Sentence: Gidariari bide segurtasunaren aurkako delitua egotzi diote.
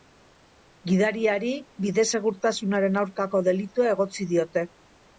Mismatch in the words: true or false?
false